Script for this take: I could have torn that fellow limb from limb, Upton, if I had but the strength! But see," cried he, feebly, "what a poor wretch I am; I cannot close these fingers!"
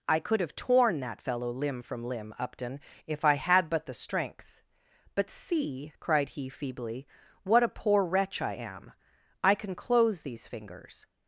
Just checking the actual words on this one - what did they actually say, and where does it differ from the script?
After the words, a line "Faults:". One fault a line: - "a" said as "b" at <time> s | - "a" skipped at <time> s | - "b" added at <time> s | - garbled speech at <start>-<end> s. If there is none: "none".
I could have torn that fellow limb from limb, Upton, if I had but the strength! But see," cried he, feebly, "what a poor wretch I am; I can close these fingers!"
Faults:
- "cannot" said as "can" at 9.5 s